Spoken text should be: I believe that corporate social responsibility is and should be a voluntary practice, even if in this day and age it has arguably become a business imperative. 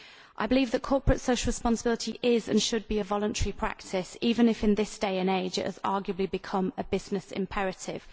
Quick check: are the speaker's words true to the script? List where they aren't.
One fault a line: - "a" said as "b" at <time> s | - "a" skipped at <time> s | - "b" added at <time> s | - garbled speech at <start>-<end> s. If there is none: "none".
none